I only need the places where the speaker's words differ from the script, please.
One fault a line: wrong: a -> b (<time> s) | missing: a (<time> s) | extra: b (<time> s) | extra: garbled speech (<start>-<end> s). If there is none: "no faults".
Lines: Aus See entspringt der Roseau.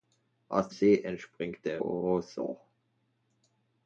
no faults